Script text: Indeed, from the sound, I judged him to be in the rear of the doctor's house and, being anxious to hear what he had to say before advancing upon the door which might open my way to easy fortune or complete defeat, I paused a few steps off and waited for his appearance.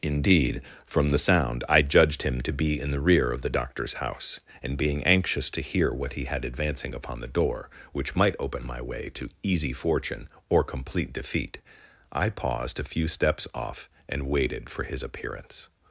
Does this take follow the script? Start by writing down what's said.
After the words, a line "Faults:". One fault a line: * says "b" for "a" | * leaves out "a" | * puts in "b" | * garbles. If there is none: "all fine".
Indeed, from the sound, I judged him to be in the rear of the doctor's house and, being anxious to hear what he had advancing upon the door which might open my way to easy fortune or complete defeat, I paused a few steps off and waited for his appearance.
Faults:
* leaves out "to say before"